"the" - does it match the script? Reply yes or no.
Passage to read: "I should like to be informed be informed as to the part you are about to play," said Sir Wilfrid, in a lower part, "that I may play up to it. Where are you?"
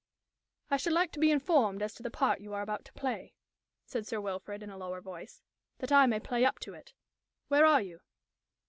yes